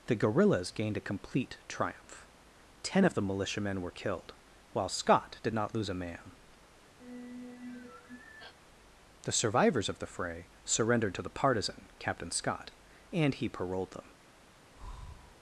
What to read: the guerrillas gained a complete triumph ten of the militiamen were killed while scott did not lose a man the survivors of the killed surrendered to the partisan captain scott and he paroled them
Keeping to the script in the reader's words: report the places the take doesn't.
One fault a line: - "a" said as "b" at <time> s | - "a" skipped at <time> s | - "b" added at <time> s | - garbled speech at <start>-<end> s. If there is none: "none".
- "killed" said as "fray" at 10.1 s